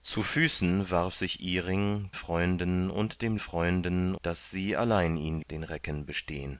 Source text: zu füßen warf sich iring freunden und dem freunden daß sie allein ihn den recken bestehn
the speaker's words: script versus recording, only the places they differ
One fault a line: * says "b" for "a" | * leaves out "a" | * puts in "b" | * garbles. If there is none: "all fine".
all fine